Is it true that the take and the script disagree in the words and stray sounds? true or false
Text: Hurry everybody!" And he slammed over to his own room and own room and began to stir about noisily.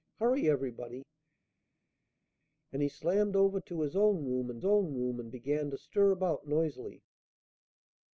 false